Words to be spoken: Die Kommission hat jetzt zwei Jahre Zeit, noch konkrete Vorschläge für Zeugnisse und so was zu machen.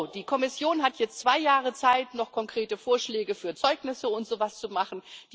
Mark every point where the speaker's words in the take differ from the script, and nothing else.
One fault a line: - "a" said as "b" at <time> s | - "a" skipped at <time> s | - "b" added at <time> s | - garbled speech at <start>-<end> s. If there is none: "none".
none